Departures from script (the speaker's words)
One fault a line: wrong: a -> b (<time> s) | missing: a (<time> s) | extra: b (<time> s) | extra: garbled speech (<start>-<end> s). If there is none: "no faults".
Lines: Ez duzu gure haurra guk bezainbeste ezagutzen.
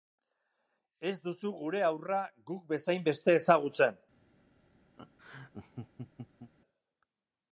no faults